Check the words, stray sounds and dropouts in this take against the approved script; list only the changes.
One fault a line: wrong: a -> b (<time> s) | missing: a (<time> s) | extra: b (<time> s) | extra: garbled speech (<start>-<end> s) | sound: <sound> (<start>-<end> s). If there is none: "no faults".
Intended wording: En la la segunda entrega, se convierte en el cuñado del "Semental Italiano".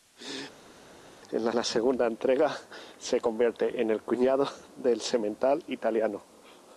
no faults